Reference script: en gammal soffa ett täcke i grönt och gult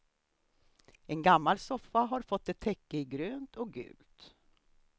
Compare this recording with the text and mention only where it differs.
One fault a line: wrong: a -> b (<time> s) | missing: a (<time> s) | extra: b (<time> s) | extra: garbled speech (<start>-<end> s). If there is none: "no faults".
extra: har fått (2.0 s)